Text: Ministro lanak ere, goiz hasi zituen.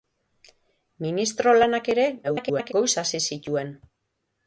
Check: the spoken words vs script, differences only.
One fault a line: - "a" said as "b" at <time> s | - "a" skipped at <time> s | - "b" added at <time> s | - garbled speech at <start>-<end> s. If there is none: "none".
- garbled speech at 2.2-2.7 s